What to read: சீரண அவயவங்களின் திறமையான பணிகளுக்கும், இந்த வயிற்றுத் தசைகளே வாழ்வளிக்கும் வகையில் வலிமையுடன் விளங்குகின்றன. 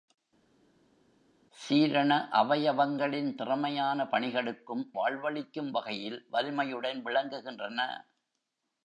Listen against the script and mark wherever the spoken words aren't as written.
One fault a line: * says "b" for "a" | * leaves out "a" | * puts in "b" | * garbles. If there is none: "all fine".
* leaves out "இந்த வயிற்றுத் தசைகளே"